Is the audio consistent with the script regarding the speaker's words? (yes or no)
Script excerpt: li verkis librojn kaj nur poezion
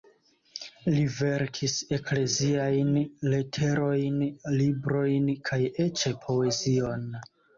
no